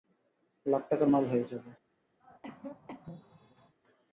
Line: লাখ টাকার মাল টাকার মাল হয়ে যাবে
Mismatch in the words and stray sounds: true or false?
true